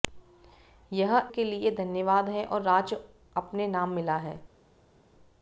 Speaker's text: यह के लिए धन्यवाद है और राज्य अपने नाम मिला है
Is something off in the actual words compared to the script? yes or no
no